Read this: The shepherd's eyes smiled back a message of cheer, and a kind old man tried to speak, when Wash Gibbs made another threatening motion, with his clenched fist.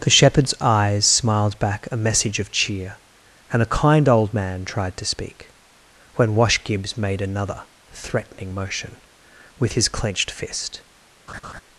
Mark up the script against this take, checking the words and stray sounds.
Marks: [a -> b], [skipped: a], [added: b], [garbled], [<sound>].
The shepherd's eyes smiled back a message of cheer, and a kind old man tried to speak, when Wash Gibbs made another threatening motion, with his clenched fist. [laugh]